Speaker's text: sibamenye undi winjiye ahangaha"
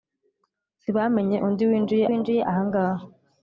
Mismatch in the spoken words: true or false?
true